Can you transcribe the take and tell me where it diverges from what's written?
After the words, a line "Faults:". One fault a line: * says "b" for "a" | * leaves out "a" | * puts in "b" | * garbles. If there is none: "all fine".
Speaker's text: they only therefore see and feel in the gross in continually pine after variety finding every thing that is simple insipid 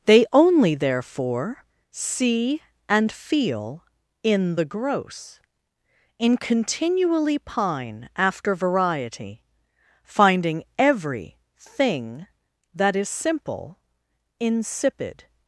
they only therefore see and feel in the gross in continually pine after variety finding every thing that is simple insipid
Faults:
all fine